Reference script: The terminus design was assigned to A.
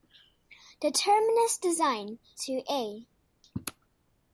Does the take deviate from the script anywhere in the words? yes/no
yes